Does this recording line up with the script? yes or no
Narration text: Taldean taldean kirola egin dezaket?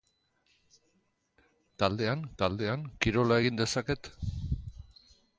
yes